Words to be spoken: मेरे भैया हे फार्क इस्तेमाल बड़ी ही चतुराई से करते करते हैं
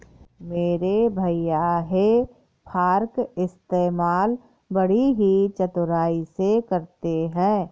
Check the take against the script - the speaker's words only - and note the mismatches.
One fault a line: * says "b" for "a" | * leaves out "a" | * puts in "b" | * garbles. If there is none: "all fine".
* leaves out "करते"